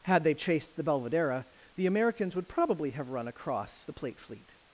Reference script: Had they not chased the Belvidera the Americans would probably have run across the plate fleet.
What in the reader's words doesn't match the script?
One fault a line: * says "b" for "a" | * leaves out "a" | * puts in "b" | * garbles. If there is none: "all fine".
* leaves out "not"